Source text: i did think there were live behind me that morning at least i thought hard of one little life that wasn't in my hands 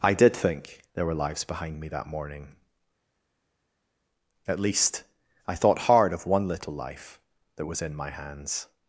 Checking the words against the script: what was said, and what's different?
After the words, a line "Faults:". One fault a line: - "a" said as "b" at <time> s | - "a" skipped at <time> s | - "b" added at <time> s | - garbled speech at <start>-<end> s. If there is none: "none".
i did think there were lives behind me that morning at least i thought hard of one little life that was in my hands
Faults:
- "live" said as "lives" at 1.1 s
- "wasn't" said as "was" at 7.7 s